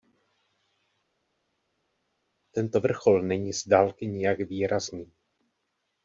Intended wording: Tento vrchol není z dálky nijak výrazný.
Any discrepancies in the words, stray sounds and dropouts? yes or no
no